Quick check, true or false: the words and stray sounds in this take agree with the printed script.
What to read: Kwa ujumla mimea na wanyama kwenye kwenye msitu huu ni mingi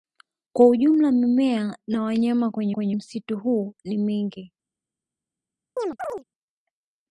false